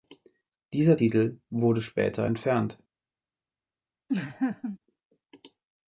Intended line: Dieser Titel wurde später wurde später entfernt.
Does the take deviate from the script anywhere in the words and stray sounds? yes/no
yes